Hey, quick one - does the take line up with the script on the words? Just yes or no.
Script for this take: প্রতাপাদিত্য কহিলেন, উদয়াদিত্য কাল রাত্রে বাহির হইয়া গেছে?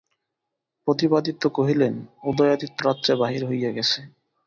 no